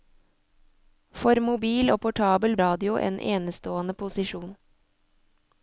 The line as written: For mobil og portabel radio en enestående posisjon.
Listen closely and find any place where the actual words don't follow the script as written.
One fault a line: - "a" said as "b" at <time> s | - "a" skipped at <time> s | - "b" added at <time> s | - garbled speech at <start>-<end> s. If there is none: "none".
none